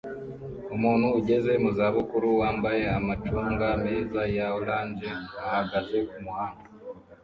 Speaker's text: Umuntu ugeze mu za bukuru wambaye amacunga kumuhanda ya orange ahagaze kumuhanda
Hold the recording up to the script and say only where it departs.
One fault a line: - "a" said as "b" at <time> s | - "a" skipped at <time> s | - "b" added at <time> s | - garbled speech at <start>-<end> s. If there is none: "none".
- "kumuhanda" said as "meza" at 3.8 s